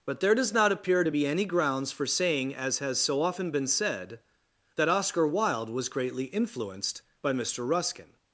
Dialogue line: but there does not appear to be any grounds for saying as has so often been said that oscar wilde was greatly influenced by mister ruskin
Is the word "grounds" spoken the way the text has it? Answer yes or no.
yes